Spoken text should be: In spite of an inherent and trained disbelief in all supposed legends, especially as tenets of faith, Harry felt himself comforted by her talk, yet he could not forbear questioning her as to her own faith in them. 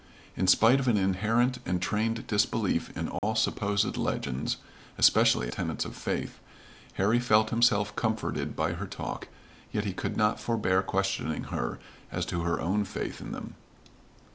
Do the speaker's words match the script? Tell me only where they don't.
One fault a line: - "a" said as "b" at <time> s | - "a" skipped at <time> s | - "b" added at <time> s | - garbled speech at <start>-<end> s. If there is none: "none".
- "as" skipped at 5.5 s